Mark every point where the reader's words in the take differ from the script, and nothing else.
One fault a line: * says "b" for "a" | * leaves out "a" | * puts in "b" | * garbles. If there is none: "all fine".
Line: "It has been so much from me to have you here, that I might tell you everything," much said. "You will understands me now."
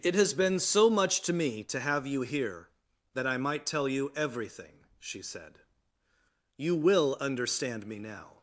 * says "to" for "from"
* says "she" for "much"
* says "understand" for "understands"